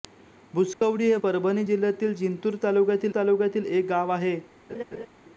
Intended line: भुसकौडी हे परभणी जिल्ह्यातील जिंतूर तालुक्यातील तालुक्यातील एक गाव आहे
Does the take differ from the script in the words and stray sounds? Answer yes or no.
yes